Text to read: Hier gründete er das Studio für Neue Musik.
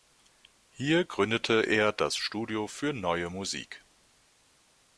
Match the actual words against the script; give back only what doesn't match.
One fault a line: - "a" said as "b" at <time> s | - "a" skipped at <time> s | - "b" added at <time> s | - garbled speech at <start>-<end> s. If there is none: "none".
none